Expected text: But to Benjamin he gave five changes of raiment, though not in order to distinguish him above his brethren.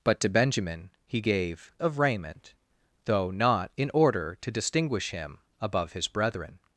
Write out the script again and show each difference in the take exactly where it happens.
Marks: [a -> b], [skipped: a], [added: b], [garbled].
But to Benjamin he gave [skipped: five changes] of raiment, though not in order to distinguish him above his brethren.